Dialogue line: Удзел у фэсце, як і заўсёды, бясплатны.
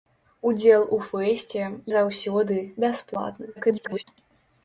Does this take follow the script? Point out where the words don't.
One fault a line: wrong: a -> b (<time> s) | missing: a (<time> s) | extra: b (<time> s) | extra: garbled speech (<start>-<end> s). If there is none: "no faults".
missing: як (1.6 s)
extra: garbled speech (3.6-4.0 s)